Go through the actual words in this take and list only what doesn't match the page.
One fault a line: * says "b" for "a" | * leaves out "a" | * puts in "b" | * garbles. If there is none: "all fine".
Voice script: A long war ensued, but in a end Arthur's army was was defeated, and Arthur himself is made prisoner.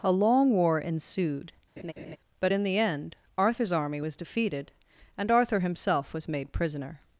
* says "the" for "a"
* leaves out "was"
* says "was" for "is"